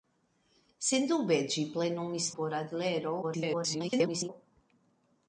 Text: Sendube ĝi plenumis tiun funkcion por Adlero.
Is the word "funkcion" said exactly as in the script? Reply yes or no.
no